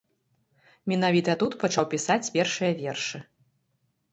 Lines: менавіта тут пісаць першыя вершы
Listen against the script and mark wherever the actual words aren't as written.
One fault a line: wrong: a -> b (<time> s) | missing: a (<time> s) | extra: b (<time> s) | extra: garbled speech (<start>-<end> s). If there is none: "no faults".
extra: пачаў (1.6 s)